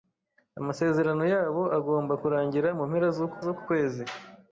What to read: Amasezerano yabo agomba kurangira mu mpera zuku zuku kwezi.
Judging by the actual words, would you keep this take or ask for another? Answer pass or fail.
pass